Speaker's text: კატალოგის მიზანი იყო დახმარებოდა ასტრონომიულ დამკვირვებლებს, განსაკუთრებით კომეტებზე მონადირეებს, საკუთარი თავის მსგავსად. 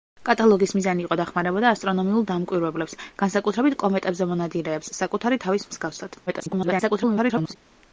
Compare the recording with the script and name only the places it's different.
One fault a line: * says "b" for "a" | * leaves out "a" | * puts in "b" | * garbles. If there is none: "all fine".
* garbles